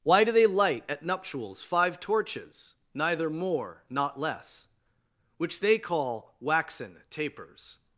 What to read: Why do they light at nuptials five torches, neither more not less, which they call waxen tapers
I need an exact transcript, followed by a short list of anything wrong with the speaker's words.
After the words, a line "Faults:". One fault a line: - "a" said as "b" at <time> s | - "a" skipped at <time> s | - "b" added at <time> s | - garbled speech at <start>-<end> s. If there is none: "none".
Why do they light at nuptials five torches, neither more not less, which they call waxen tapers
Faults:
none